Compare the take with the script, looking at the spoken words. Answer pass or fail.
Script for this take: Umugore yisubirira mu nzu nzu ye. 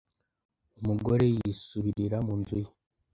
fail